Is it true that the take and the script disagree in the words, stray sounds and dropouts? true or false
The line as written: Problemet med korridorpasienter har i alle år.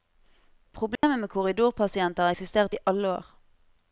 true